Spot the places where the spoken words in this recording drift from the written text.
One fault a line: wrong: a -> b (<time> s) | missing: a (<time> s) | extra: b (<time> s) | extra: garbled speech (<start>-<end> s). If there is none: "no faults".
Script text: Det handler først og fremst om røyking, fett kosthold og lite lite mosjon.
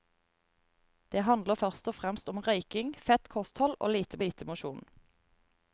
no faults